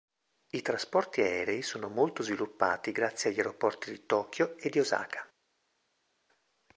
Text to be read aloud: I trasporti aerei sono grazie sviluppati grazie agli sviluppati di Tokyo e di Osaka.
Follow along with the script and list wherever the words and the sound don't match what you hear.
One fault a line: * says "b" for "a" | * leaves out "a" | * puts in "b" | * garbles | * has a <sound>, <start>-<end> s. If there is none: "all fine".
* says "molto" for "grazie"
* says "aeroporti" for "sviluppati"